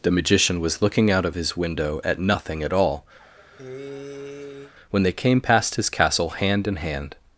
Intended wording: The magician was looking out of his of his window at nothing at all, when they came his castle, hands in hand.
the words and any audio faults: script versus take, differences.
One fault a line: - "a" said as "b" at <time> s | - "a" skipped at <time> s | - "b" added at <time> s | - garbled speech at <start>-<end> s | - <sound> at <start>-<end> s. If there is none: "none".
- "of his" skipped at 1.6 s
- cough at 3.2-4.7 s
- "past" added at 5.4 s
- "hands" said as "hand" at 6.3 s